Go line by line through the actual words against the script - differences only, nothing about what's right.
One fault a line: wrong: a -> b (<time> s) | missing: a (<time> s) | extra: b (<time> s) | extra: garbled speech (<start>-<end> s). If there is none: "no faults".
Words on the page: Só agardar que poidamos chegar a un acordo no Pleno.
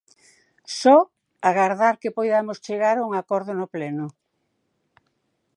no faults